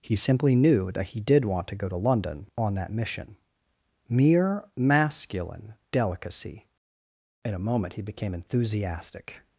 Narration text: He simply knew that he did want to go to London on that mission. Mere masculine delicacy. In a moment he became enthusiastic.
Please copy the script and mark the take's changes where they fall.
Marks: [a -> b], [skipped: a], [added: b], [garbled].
He simply knew that he did want to go to London on that mission. Mere masculine delicacy. In a moment he became enthusiastic.